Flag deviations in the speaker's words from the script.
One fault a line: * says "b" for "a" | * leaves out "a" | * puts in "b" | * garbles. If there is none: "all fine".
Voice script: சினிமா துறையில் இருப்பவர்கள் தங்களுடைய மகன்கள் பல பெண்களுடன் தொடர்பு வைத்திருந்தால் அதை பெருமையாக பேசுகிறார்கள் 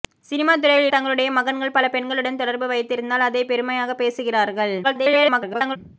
* leaves out "இருப்பவர்கள்"
* garbles